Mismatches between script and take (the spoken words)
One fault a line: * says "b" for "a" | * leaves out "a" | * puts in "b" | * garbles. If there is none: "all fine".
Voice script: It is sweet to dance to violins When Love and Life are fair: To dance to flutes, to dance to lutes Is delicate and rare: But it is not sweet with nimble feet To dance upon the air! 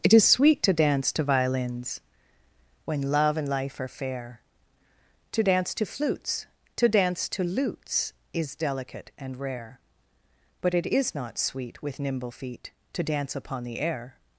all fine